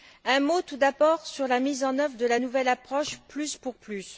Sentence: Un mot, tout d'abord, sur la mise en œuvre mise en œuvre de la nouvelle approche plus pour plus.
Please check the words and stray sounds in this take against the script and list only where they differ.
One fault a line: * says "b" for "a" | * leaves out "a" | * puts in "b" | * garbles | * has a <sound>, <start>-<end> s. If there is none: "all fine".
* leaves out "mise en œuvre"